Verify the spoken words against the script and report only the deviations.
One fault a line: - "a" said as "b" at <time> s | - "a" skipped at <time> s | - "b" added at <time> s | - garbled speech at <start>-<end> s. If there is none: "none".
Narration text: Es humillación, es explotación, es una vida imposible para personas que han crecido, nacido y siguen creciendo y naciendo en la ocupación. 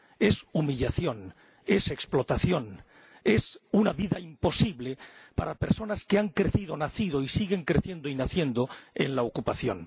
none